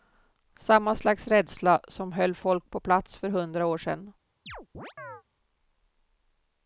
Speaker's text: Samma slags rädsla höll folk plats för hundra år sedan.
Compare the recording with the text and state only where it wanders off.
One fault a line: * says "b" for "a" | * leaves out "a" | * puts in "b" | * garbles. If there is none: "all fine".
* puts in "som"
* puts in "på"